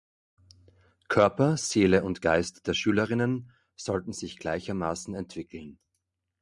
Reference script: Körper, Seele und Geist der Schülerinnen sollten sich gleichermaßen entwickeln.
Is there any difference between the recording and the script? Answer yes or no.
no